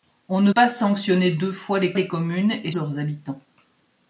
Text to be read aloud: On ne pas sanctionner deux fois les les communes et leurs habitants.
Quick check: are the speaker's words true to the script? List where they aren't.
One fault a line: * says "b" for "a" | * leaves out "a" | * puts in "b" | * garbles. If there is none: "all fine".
all fine